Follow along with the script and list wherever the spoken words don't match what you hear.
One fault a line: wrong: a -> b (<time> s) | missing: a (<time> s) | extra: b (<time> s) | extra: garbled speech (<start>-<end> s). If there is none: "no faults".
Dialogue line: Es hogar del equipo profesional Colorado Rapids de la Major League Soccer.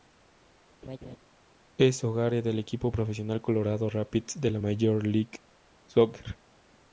no faults